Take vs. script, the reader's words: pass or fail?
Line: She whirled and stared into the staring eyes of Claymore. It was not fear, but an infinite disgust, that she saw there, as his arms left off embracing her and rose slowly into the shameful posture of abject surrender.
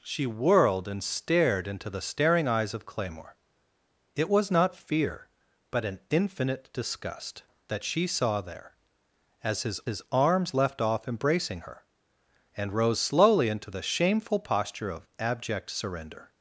fail